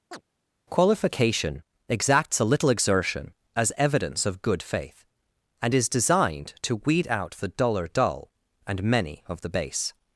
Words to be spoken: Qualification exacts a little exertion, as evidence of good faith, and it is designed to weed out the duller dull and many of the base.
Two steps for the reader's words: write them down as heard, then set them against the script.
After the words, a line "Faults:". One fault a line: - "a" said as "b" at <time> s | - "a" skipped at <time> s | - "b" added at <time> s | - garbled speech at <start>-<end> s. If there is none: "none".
Qualification exacts a little exertion, as evidence of good faith, and is designed to weed out the duller dull and many of the base.
Faults:
- "it" skipped at 5.7 s